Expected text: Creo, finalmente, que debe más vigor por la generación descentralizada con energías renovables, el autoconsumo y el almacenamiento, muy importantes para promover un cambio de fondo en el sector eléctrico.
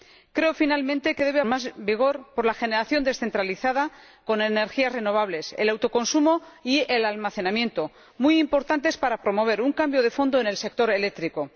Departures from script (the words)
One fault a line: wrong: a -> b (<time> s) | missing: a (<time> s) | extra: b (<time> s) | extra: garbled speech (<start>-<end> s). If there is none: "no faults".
no faults